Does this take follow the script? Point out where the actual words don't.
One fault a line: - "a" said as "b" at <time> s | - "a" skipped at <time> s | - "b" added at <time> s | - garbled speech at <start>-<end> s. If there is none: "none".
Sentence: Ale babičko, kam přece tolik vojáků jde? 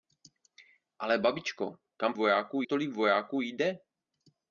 - "přece" said as "vojáků" at 2.2 s